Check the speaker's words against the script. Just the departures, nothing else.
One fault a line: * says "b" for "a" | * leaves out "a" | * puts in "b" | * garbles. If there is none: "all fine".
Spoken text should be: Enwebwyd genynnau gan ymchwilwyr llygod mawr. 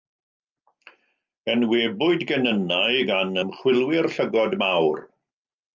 all fine